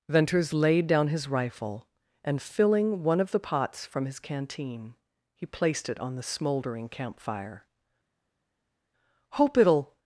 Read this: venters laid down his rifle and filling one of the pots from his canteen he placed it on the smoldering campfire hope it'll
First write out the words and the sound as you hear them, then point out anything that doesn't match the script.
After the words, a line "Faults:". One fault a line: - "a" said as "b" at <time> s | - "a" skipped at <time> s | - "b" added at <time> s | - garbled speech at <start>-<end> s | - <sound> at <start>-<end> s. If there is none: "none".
venters laid down his rifle and filling one of the pots from his canteen he placed it on the smoldering campfire hope it'll
Faults:
none